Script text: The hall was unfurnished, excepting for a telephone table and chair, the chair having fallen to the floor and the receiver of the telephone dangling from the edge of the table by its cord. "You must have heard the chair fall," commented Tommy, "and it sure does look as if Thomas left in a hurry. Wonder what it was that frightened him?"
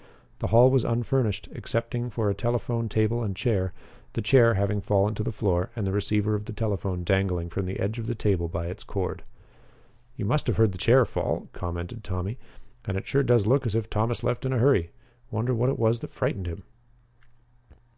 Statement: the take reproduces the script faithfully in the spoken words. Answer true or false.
true